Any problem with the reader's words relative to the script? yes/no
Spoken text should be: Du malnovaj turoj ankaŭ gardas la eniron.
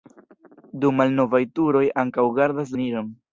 yes